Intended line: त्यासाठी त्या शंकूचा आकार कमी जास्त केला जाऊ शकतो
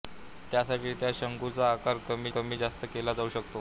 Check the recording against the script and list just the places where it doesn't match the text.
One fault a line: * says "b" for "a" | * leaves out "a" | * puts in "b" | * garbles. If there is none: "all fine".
* puts in "कमी"